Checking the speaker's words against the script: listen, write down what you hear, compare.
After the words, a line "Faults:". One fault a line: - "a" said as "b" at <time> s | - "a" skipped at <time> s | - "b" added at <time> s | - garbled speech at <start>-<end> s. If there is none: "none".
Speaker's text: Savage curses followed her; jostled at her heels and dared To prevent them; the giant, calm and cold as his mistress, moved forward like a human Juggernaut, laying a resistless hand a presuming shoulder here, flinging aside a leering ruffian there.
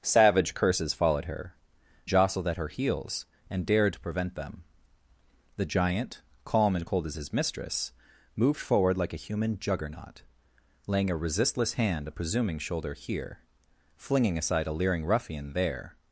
Savage curses followed her; jostled at her heels and dared To prevent them; the giant, calm and cold as his mistress, moved forward like a human Juggernaut, laying a resistless hand a presuming shoulder here, flinging aside a leering ruffian there.
Faults:
none